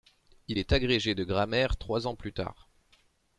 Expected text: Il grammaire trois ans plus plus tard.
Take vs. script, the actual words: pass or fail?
fail